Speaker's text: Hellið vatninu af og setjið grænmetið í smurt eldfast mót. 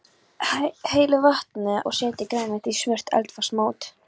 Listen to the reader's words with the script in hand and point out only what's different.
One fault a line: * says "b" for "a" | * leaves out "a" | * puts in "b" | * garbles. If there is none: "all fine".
* leaves out "af"